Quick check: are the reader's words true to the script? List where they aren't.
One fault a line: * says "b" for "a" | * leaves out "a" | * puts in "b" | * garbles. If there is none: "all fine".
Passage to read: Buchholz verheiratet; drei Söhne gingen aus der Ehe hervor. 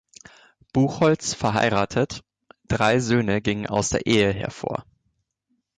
all fine